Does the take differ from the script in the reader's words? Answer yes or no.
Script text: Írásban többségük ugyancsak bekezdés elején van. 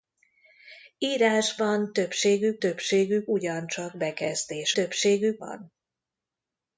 yes